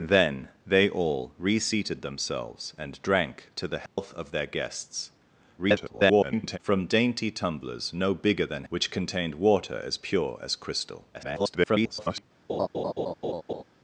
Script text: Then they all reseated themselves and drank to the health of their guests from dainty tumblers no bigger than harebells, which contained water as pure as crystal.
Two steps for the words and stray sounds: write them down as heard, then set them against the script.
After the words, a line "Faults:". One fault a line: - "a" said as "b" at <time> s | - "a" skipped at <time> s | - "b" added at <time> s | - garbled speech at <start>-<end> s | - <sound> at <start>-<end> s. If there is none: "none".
Then they all reseated themselves and drank to the health of their guests [garbled] from dainty tumblers no bigger than which contained water as pure as crystal. [garbled]
Faults:
- dropout at 3.9-4.0 s
- garbled speech at 5.6-6.6 s
- "harebells" skipped at 8.6 s
- garbled speech at 11.1-12.2 s
- laugh at 12.5-13.6 s